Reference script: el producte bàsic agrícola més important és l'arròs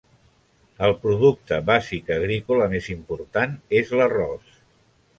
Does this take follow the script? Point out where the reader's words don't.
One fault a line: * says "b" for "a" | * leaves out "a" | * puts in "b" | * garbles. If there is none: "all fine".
all fine